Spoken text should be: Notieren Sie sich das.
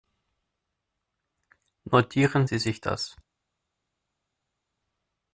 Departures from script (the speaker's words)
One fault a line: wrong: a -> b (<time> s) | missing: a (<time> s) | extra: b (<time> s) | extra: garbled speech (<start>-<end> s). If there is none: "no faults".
no faults